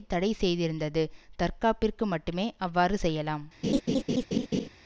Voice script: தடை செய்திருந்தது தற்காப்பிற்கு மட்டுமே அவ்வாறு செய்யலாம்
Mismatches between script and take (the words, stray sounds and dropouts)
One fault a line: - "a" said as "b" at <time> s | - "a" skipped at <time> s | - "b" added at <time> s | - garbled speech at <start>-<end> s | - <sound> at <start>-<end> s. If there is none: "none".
- laugh at 3.6-4.7 s